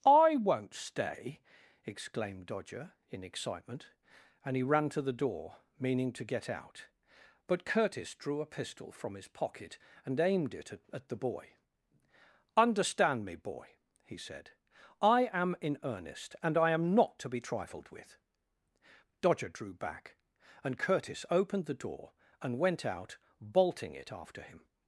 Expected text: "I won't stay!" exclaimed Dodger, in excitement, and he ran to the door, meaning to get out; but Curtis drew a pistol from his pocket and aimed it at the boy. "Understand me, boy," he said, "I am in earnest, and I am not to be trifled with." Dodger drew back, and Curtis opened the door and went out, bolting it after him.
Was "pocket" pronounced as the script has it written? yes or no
yes